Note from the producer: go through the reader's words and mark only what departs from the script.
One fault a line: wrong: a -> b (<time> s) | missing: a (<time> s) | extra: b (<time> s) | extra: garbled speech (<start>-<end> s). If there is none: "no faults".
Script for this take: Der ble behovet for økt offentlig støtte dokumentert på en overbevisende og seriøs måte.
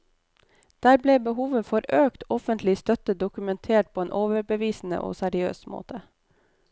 no faults